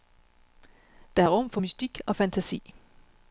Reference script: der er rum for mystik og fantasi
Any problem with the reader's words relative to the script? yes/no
no